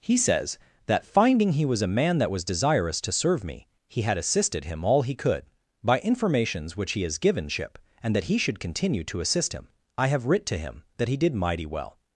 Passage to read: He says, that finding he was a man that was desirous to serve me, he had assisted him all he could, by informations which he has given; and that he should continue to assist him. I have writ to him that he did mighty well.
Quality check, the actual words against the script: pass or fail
fail